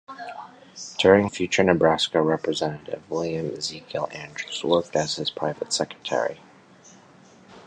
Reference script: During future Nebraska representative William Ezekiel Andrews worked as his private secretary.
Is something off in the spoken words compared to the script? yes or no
no